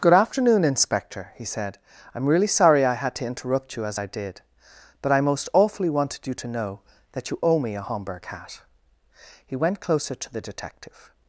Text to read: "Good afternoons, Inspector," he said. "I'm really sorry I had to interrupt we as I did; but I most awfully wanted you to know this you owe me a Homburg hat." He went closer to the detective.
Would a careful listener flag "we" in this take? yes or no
yes